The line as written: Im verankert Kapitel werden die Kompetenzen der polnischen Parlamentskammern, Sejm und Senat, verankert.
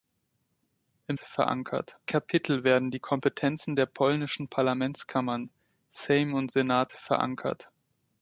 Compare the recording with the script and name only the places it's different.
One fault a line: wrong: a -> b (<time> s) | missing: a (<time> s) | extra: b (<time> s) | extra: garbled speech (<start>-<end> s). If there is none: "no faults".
no faults